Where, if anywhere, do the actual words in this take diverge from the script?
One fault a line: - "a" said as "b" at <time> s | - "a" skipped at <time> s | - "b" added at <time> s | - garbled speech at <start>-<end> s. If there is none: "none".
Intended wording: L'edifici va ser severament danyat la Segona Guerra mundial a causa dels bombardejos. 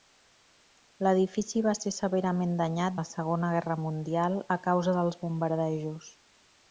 none